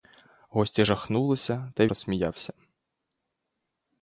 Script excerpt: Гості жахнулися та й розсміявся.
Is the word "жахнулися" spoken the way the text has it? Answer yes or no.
yes